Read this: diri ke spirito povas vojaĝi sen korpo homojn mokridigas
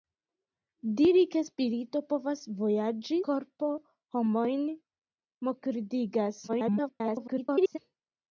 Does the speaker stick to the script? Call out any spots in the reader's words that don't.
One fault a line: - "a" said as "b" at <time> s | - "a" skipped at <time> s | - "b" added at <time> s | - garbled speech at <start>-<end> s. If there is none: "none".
- "sen" skipped at 3.2 s
- garbled speech at 6.5-7.8 s